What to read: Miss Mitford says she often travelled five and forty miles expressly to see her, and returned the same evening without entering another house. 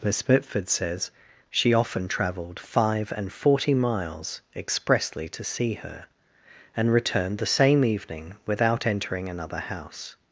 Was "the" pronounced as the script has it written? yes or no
yes